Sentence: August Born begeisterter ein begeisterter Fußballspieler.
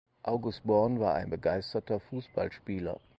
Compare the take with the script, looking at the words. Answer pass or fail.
fail